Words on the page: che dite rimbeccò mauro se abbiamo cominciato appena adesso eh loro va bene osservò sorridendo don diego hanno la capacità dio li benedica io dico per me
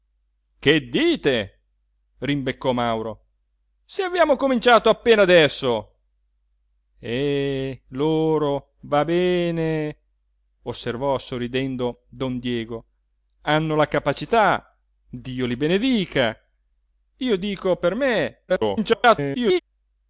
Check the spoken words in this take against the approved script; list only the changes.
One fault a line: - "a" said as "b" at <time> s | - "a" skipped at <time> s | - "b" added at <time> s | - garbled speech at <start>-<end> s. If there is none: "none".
- garbled speech at 18.5-19.6 s